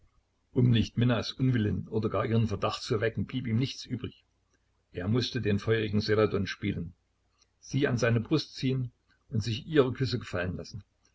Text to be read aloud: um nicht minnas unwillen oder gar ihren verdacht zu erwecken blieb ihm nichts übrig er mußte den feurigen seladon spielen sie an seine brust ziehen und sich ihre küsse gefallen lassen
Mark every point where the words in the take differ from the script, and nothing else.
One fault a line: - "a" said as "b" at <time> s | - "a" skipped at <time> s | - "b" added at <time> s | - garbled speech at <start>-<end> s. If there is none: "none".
none